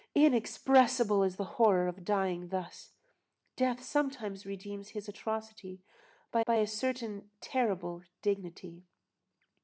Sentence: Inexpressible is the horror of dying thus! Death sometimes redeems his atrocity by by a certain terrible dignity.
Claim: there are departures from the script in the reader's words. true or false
false